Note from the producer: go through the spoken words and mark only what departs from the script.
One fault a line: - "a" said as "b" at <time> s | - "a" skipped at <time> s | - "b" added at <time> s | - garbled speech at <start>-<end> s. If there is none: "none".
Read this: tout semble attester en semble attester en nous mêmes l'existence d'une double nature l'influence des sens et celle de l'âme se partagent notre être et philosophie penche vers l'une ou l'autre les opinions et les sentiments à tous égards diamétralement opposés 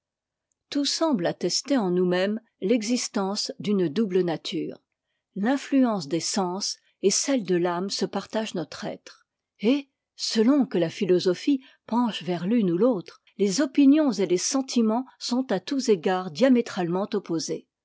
- "semble attester en" skipped at 1.9 s
- "selon que la" added at 10.2 s
- "sont" added at 15.2 s